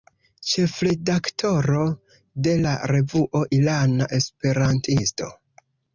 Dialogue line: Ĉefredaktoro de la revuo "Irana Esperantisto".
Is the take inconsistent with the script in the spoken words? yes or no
no